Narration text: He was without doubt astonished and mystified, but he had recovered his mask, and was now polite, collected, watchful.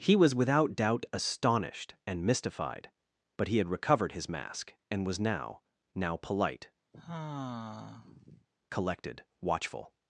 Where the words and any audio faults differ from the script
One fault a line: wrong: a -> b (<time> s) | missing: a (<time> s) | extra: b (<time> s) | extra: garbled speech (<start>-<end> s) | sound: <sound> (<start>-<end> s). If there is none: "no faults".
extra: now (5.9 s)
sound: sigh (6.9-8.5 s)